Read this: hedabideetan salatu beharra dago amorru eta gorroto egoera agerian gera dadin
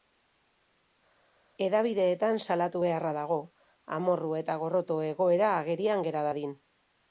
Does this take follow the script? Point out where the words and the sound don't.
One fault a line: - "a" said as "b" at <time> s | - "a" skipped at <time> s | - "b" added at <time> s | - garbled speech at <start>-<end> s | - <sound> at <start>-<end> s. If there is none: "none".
none